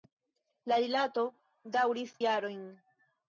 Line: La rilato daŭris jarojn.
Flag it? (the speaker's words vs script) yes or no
no